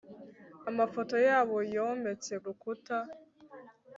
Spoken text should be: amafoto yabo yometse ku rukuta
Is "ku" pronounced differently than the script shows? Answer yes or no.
yes